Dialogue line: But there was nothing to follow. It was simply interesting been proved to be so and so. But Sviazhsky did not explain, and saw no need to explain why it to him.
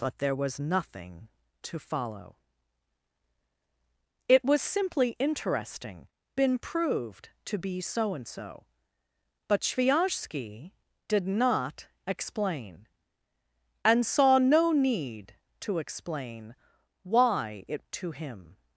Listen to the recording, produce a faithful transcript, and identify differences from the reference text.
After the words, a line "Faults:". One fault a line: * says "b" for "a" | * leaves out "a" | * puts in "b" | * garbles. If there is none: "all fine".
But there was nothing to follow. It was simply interesting been proved to be so and so. But Sviazhsky did not explain, and saw no need to explain why it to him.
Faults:
all fine